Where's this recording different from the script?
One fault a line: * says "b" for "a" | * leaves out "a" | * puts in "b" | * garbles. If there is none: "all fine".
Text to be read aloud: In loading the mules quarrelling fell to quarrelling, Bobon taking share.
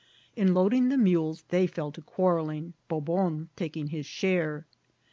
* says "they" for "quarrelling"
* puts in "his"